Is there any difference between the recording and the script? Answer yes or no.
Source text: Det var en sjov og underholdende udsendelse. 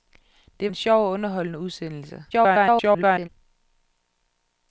yes